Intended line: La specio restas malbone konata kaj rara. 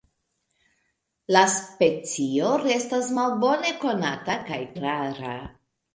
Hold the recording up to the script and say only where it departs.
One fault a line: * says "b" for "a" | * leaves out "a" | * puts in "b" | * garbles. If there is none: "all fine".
all fine